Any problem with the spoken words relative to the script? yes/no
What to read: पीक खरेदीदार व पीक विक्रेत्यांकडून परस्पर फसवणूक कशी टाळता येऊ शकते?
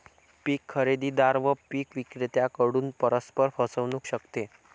yes